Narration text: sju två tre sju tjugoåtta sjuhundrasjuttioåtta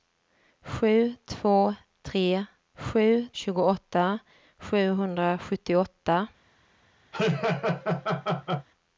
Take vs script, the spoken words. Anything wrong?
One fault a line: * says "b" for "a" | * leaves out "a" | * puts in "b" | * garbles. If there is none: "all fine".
all fine